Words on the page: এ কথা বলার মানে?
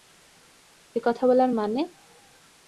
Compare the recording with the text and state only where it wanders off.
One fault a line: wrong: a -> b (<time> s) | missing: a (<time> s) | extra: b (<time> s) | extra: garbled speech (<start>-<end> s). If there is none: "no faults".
no faults